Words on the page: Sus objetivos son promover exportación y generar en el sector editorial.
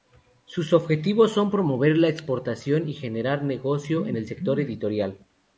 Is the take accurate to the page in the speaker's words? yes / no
no